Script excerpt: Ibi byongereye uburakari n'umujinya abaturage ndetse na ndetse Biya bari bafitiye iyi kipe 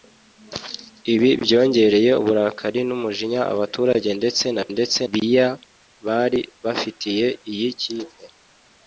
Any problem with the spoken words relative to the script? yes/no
no